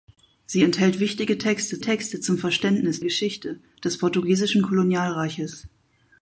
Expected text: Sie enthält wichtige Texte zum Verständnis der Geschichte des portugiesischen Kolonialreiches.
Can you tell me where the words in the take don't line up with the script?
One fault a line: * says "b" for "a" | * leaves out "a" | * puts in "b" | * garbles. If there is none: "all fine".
* puts in "Texte"
* leaves out "der"